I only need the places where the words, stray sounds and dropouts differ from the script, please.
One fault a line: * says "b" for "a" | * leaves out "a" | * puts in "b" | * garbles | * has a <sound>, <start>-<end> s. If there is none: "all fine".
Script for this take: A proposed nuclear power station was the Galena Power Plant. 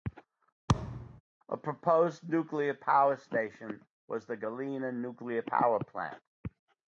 * has a thud, 0.7-1.2 s
* puts in "Nuclear"